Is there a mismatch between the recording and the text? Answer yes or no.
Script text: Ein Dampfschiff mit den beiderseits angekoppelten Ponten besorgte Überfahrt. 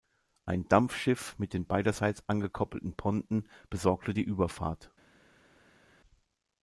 yes